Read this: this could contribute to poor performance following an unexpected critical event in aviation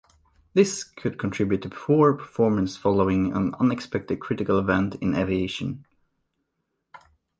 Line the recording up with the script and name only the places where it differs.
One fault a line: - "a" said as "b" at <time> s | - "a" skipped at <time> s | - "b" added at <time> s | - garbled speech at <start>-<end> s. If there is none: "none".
none